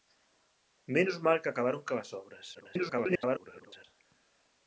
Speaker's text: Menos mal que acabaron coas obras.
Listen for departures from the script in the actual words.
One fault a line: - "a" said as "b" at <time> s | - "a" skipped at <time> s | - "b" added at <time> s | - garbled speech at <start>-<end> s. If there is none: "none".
- garbled speech at 2.5-3.8 s